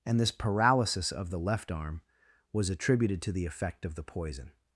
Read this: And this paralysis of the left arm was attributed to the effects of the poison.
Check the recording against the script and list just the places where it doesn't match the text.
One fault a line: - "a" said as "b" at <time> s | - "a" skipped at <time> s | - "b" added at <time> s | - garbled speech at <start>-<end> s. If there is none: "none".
- "effects" said as "effect" at 3.5 s